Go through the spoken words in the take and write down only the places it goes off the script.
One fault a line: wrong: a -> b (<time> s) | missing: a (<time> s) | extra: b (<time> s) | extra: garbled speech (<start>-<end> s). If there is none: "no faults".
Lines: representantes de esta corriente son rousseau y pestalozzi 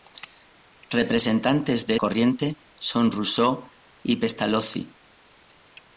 missing: esta (1.9 s)